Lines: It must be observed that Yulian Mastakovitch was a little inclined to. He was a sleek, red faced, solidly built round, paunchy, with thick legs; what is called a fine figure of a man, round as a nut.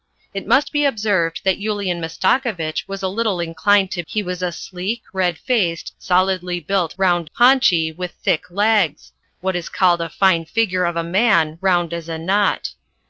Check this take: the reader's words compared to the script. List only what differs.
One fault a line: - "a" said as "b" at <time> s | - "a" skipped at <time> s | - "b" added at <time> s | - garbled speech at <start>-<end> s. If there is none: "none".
none